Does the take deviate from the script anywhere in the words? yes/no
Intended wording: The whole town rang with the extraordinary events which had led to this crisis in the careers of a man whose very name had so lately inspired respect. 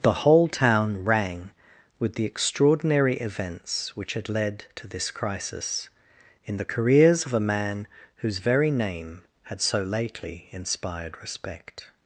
no